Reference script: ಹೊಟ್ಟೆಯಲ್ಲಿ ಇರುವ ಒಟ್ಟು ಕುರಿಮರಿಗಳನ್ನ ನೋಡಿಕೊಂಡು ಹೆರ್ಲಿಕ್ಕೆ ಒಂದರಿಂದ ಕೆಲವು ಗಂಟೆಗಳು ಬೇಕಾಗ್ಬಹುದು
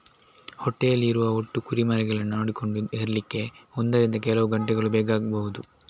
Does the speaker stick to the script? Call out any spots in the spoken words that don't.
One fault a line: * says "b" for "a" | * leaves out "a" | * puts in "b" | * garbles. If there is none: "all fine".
all fine